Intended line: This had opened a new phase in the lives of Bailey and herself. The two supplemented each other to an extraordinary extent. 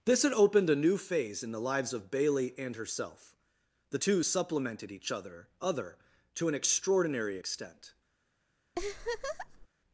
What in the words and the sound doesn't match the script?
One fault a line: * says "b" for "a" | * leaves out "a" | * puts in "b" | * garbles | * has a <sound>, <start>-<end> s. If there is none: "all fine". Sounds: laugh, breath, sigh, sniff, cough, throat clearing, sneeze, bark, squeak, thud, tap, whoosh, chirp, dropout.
* puts in "other"
* has a laugh, 8.7-9.7 s